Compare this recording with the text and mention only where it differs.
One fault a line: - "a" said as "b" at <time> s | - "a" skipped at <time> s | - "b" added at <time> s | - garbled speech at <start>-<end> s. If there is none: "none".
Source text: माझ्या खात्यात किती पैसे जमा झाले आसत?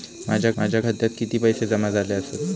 - "माझ्या" added at 0.6 s